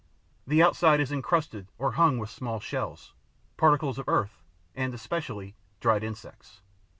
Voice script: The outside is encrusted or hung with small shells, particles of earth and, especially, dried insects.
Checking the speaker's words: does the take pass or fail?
pass